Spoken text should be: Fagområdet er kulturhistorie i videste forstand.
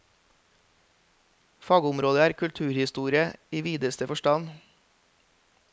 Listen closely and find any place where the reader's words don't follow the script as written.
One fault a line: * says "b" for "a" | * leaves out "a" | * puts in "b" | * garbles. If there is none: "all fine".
all fine